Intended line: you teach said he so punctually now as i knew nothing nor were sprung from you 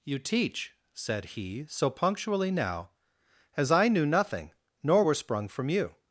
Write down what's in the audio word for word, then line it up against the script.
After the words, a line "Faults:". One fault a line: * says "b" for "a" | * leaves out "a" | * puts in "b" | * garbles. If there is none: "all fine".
you teach said he so punctually now as i knew nothing nor were sprung from you
Faults:
all fine